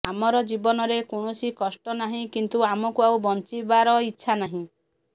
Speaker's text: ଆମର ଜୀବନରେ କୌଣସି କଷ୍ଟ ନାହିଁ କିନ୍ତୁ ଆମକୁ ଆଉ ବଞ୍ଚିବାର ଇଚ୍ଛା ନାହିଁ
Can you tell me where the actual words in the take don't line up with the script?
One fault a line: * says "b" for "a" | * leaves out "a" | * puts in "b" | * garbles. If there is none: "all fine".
all fine